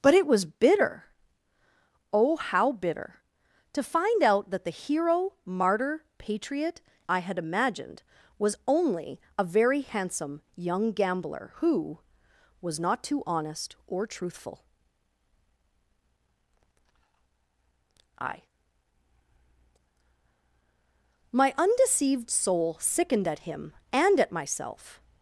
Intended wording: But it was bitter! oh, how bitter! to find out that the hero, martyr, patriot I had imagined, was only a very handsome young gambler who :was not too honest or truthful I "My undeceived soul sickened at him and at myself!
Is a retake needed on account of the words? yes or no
no